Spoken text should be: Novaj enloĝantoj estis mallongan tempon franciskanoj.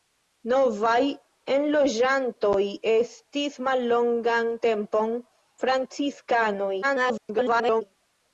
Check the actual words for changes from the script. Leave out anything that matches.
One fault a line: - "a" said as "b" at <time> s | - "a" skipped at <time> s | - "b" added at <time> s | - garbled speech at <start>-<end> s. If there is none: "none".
- garbled speech at 6.8-7.8 s